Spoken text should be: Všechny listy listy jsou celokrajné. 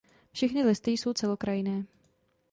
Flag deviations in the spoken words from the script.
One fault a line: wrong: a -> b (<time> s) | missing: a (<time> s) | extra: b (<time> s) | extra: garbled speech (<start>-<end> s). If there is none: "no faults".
missing: listy (0.9 s)